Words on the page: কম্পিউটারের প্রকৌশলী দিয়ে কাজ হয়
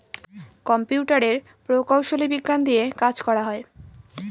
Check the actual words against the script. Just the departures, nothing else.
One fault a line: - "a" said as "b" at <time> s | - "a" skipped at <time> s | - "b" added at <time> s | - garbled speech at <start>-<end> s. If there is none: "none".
- "বিজ্ঞান" added at 2.3 s
- "করা" added at 3.2 s